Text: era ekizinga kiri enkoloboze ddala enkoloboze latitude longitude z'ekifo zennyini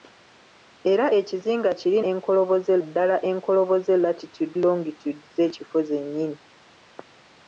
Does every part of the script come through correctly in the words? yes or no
yes